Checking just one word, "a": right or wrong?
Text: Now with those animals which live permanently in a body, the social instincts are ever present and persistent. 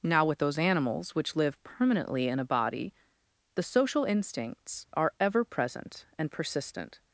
right